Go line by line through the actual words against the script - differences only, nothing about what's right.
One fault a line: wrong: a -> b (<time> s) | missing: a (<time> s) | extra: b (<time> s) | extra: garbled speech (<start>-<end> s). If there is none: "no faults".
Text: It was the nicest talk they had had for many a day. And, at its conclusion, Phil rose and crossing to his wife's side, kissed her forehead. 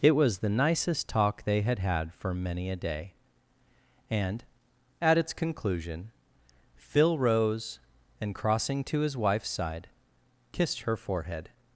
no faults